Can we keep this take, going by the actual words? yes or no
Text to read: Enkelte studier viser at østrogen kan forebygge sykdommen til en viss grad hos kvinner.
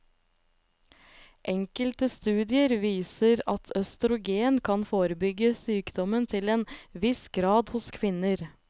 yes